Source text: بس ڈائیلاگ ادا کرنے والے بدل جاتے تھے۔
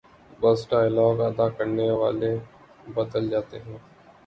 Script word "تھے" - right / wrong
wrong